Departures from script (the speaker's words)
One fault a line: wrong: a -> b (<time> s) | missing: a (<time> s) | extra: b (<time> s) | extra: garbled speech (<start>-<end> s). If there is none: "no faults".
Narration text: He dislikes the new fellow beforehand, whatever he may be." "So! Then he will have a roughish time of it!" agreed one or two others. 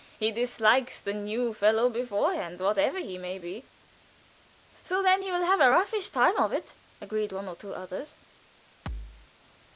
no faults